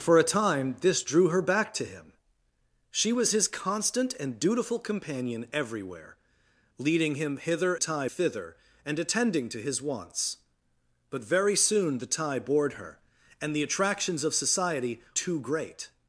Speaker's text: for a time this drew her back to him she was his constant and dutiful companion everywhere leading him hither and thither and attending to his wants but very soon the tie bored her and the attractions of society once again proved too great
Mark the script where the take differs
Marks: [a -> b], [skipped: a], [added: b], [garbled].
for a time this drew her back to him she was his constant and dutiful companion everywhere leading him hither [and -> tie] thither and attending to his wants but very soon the tie bored her and the attractions of society [skipped: once again proved] too great